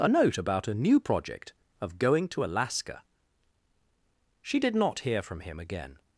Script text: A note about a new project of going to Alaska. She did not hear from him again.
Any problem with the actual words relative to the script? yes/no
no